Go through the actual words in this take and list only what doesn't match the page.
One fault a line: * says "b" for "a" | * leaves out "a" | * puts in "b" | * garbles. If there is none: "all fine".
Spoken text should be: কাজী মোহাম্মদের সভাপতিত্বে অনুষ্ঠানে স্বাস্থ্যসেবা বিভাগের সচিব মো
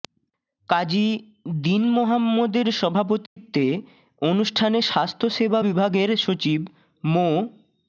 * puts in "দীন"